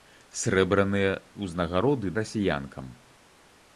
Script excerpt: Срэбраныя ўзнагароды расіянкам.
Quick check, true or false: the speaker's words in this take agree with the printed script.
true